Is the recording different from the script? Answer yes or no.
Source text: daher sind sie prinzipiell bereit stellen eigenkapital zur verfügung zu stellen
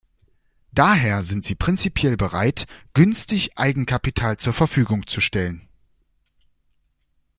yes